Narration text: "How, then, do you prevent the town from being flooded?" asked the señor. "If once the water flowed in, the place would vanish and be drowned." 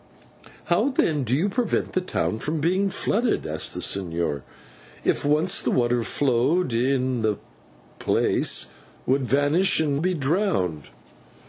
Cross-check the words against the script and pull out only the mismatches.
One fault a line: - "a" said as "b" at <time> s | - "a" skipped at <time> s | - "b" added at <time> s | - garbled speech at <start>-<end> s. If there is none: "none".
none